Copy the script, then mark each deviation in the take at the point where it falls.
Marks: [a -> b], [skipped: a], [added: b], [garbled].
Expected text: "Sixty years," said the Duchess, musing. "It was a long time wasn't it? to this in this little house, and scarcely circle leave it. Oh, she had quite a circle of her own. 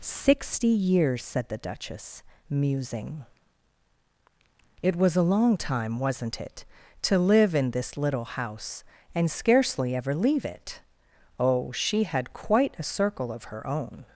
"Sixty years," said the Duchess, musing. "It was a long time wasn't it? to [this -> live] in this little house, and scarcely [circle -> ever] leave it. Oh, she had quite a circle of her own.